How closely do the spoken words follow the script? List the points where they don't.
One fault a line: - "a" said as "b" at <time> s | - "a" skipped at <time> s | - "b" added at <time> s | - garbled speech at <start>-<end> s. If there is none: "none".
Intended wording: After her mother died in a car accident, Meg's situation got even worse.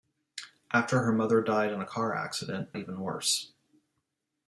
- "Meg's situation got" skipped at 2.7 s